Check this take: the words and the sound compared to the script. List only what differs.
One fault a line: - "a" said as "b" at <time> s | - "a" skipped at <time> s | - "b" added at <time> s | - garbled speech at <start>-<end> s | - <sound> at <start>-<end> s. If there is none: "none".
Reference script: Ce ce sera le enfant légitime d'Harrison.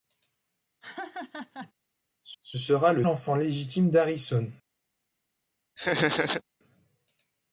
- laugh at 0.8-1.7 s
- laugh at 5.8-6.4 s